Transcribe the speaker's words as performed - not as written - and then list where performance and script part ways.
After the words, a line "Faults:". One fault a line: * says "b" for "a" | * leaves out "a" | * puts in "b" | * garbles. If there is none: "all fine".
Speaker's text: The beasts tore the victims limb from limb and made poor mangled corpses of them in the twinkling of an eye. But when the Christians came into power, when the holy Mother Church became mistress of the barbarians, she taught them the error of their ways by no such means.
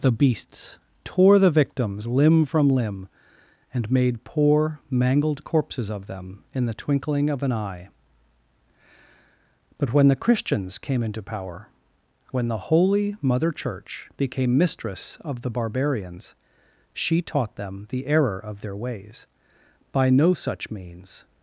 The beasts tore the victims limb from limb and made poor mangled corpses of them in the twinkling of an eye. But when the Christians came into power, when the holy Mother Church became mistress of the barbarians, she taught them the error of their ways by no such means.
Faults:
all fine